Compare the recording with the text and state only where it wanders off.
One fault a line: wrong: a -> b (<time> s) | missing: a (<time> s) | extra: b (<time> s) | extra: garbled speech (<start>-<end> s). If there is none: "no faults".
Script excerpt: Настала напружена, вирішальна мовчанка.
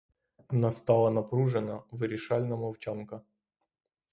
no faults